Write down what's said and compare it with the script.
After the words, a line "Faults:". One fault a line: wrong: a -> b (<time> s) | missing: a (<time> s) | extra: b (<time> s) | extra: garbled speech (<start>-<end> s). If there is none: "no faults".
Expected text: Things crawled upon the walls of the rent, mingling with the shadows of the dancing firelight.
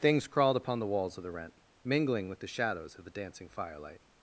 Things crawled upon the walls of the rent, mingling with the shadows of the dancing firelight.
Faults:
no faults